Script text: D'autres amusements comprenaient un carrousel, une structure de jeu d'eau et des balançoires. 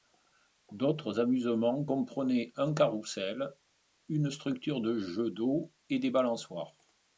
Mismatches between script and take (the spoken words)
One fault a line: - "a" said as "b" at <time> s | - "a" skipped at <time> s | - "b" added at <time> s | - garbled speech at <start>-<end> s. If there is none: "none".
none